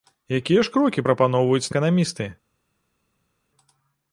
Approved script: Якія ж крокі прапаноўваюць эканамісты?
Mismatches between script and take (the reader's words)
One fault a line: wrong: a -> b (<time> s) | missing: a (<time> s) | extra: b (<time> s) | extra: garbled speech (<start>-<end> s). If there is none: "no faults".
no faults